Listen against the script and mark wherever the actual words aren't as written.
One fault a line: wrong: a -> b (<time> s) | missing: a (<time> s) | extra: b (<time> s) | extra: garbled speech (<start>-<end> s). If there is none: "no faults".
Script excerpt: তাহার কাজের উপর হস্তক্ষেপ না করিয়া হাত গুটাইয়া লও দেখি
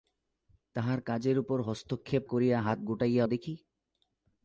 missing: না (2.2 s)
missing: লও (3.2 s)